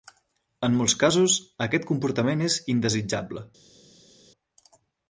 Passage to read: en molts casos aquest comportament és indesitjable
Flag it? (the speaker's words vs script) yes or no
no